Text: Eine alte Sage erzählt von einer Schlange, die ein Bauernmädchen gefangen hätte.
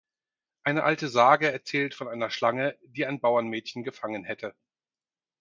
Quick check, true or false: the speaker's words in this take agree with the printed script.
true